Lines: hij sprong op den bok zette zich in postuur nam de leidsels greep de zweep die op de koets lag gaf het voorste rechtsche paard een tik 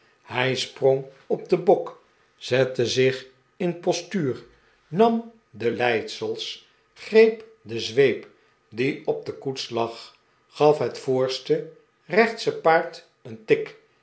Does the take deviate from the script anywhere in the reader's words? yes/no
no